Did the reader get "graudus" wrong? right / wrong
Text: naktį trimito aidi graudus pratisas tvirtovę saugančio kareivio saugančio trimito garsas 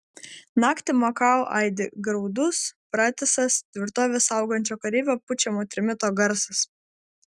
right